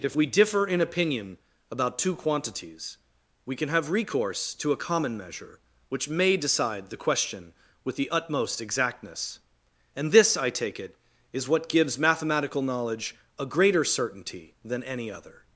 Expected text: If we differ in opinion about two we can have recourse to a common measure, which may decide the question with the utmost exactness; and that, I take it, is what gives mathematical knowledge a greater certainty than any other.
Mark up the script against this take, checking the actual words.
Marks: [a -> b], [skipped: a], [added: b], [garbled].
If we differ in opinion about two [added: quantities] we can have recourse to a common measure, which may decide the question with the utmost exactness; and [that, -> this] I take it, is what gives mathematical knowledge a greater certainty than any other.